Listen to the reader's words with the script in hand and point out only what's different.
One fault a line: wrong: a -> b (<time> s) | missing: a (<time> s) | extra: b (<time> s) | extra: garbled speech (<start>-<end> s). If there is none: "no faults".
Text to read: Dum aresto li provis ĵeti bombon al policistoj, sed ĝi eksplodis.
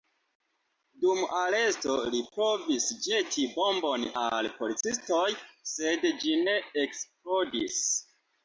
extra: ne (6.5 s)